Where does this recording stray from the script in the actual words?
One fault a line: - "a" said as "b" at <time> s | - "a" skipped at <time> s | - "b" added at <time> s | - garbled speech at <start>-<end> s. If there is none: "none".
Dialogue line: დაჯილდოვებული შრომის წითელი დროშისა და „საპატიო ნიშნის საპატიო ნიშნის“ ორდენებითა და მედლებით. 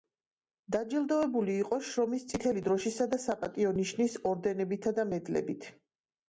- "იყო" added at 1.6 s
- "საპატიო ნიშნის" skipped at 4.2 s